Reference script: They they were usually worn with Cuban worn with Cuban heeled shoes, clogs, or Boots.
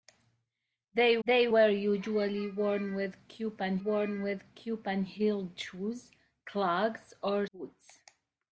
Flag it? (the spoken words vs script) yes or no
no